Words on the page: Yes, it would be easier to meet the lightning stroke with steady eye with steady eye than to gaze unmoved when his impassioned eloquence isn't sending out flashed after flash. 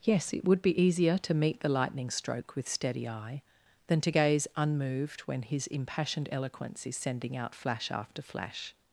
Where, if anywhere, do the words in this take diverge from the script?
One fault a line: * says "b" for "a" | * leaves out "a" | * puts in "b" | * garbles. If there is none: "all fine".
* leaves out "with steady eye"
* says "is" for "isn't"
* says "flash" for "flashed"